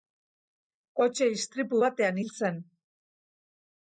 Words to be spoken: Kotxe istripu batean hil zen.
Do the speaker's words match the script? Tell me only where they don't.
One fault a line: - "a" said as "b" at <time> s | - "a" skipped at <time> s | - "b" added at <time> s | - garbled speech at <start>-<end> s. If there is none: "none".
none